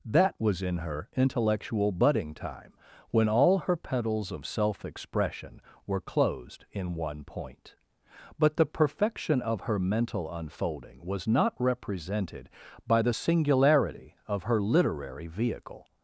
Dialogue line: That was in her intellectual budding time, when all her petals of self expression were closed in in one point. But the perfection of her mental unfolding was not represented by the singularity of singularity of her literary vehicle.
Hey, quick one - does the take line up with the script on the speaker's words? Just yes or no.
no